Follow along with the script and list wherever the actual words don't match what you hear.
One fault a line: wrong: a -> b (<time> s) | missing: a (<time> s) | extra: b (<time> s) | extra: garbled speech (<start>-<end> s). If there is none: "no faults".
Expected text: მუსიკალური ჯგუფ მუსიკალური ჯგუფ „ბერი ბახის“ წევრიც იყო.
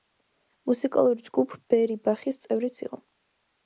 missing: მუსიკალური ჯგუფ (1.6 s)